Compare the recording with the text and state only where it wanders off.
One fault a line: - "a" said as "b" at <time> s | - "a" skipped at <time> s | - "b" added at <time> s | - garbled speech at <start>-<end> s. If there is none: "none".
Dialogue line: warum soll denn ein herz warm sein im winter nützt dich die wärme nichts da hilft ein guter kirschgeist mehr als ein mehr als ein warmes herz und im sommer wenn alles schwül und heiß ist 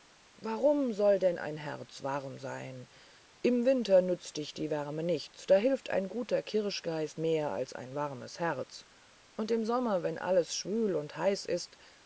- "mehr als ein" skipped at 7.9 s